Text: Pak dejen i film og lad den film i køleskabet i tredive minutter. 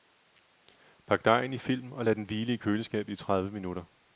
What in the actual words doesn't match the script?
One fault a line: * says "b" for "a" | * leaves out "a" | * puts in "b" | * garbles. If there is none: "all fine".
* says "hvile" for "film"